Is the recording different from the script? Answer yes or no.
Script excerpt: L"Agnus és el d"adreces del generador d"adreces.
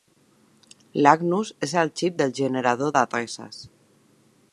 yes